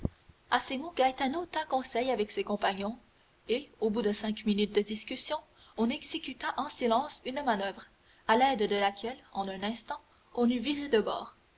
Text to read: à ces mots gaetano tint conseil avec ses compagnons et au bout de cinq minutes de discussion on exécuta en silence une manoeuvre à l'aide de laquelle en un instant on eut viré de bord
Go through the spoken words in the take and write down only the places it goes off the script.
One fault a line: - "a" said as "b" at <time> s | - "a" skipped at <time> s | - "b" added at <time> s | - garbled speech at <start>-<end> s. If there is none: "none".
none